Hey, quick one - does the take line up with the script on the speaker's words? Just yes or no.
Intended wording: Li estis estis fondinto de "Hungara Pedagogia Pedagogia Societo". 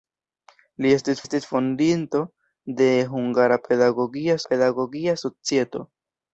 yes